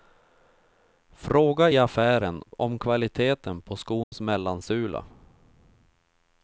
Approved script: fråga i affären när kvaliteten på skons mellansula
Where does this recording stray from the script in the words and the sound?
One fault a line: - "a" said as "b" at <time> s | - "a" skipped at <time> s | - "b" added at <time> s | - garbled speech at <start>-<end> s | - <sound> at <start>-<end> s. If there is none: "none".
- "när" said as "om" at 2.6 s
- dropout at 4.0-4.1 s